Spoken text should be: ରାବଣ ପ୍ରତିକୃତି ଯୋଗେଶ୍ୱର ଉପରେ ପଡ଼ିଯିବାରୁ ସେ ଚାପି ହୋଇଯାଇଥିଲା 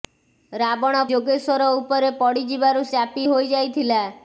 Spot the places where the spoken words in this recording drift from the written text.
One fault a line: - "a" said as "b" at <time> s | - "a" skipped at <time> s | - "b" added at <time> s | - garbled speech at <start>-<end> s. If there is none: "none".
- "ପ୍ରତିକୃତି" skipped at 1.0 s
- "ସେ" skipped at 2.8 s